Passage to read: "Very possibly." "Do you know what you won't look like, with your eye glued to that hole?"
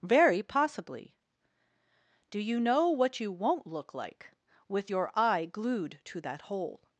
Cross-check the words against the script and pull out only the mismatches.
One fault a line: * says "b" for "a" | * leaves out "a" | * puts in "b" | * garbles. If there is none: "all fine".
all fine